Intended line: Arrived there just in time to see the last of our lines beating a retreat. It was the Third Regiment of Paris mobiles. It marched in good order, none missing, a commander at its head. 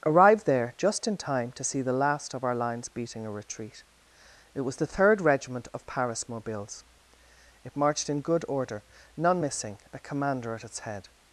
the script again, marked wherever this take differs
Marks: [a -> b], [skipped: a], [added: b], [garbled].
Arrived there just in time to see the last of our lines beating a retreat. It was the Third Regiment of Paris mobiles. It marched in good order, none missing, a commander at its head.